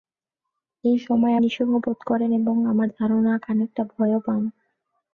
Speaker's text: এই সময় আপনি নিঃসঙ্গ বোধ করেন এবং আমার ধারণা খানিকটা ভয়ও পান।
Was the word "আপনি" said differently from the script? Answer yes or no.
yes